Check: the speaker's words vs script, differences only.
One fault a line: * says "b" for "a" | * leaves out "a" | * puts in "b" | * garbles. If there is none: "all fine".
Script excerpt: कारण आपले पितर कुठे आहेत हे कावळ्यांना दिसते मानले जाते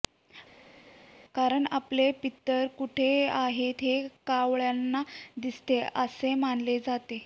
* puts in "असे"